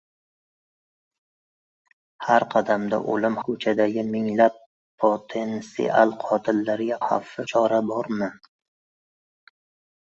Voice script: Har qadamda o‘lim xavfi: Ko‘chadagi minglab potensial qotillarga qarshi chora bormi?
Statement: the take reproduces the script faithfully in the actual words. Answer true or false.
false